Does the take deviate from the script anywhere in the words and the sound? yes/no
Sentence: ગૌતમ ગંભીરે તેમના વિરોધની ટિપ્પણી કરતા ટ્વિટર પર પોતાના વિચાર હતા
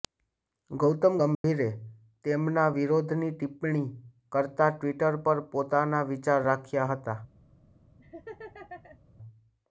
yes